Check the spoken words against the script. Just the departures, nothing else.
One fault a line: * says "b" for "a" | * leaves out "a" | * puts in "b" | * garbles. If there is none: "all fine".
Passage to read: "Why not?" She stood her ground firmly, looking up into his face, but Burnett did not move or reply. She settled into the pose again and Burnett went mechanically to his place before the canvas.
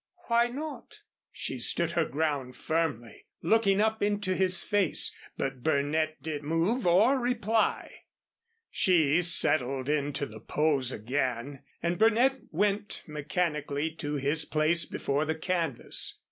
* leaves out "not"